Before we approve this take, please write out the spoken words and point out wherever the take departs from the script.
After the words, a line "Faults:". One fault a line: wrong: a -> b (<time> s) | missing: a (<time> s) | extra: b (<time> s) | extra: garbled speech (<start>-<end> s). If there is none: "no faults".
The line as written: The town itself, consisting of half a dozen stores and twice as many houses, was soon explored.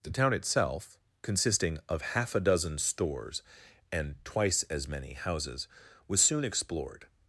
The town itself, consisting of half a dozen stores and twice as many houses, was soon explored.
Faults:
no faults